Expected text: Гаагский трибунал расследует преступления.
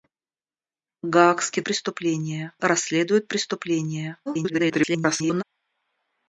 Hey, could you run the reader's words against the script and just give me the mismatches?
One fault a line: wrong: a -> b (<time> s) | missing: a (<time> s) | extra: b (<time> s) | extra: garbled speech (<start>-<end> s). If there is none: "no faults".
wrong: трибунал -> преступления (1.6 s)
extra: garbled speech (4.3-5.4 s)